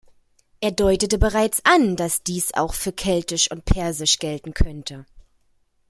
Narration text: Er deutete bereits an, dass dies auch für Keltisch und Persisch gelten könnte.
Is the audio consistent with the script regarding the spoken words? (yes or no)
yes